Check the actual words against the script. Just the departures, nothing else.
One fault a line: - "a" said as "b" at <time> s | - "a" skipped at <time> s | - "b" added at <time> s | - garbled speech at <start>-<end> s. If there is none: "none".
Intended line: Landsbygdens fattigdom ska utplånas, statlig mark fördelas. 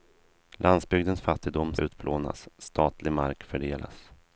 - "ska" skipped at 1.8 s